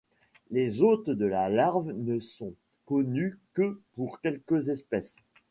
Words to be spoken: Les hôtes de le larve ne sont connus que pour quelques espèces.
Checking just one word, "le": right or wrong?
wrong